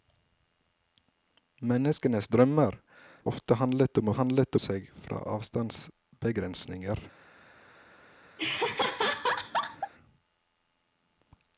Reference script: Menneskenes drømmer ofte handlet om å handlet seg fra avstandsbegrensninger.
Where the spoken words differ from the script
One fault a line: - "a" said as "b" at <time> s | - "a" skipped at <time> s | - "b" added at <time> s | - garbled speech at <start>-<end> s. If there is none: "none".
none